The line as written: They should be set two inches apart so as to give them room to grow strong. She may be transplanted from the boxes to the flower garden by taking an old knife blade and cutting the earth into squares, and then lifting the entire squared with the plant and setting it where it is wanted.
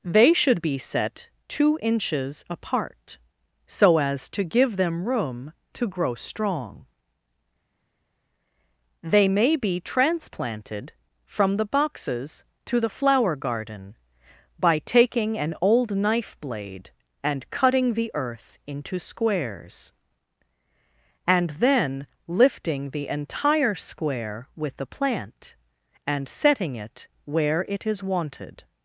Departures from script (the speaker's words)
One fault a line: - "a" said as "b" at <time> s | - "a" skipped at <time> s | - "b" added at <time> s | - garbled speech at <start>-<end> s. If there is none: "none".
- "She" said as "They" at 9.0 s
- "squared" said as "square" at 23.7 s